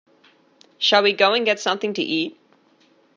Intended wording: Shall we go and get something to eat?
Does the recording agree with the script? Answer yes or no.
yes